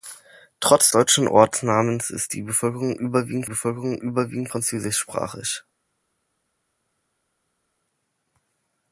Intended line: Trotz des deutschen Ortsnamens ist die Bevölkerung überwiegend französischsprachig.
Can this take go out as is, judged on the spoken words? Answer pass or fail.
fail